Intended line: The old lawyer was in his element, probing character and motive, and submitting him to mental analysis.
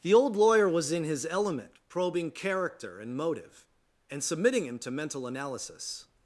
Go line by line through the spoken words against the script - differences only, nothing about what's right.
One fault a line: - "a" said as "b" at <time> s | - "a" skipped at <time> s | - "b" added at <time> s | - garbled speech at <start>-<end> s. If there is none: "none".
none